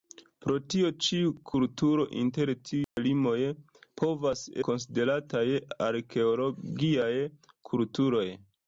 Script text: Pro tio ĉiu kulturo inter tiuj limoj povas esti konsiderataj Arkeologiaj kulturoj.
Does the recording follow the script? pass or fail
fail